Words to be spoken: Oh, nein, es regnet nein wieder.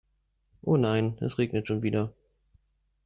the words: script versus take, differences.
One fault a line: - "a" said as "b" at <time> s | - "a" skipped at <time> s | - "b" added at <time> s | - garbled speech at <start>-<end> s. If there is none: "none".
- "nein" said as "schon" at 1.7 s